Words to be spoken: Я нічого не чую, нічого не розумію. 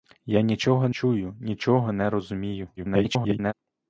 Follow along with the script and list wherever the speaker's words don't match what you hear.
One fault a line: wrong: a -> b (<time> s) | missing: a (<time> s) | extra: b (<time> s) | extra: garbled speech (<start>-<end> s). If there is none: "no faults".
missing: не (0.9 s)
extra: garbled speech (2.8-3.5 s)